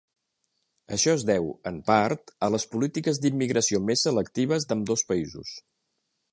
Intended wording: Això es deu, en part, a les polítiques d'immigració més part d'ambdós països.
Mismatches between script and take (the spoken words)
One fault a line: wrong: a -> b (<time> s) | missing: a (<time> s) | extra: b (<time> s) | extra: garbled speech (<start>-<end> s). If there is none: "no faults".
wrong: part -> selectives (4.1 s)